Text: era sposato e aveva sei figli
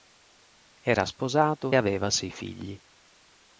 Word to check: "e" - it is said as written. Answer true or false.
false